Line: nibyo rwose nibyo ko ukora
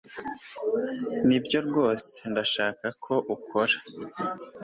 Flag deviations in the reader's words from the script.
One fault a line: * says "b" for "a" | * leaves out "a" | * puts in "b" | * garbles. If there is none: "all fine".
* says "ndashaka" for "nibyo"